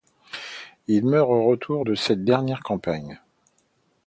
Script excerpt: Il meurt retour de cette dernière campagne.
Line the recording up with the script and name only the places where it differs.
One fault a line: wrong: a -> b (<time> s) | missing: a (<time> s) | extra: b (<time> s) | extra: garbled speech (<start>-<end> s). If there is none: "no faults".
extra: au (1.3 s)